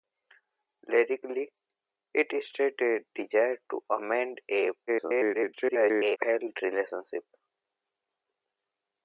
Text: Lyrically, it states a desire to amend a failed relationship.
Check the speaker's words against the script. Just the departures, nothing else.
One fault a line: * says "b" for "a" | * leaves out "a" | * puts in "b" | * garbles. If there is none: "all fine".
* garbles